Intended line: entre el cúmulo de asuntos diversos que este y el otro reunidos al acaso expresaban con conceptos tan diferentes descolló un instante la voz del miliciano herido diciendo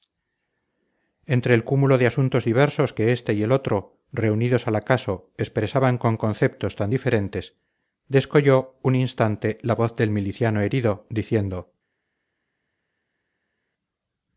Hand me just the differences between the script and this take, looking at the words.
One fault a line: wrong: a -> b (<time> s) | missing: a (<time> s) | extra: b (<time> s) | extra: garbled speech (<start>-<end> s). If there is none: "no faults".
no faults